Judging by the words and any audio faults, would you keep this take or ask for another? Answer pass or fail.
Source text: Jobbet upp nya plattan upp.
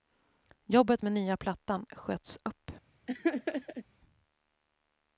fail